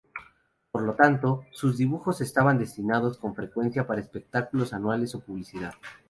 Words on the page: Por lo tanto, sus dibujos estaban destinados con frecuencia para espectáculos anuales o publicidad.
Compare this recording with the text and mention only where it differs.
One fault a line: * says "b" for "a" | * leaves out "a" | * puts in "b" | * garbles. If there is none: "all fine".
all fine